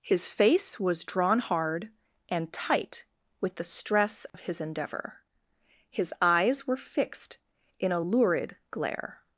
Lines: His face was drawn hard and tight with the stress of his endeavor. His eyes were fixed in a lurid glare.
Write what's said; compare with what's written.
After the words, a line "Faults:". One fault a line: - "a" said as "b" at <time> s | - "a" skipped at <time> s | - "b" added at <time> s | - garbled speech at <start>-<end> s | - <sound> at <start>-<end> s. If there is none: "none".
His face was drawn hard and tight with the stress of his endeavor. His eyes were fixed in a lurid glare.
Faults:
- dropout at 4.3-4.3 s